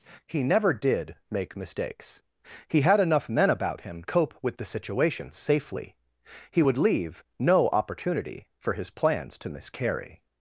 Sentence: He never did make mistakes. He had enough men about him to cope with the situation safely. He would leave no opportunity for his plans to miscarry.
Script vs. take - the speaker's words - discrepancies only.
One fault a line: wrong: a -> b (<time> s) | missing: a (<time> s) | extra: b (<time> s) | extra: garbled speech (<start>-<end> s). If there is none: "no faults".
missing: to (4.0 s)